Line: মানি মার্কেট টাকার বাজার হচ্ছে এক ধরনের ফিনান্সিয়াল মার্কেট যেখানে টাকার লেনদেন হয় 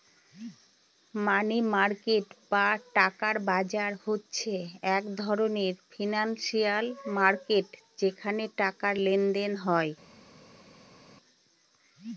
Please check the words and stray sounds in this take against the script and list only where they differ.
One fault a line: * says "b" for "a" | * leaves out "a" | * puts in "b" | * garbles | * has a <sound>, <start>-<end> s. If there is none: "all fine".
* puts in "বা"